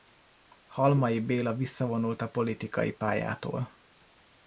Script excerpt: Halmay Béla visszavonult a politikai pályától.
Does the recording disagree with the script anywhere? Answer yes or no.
no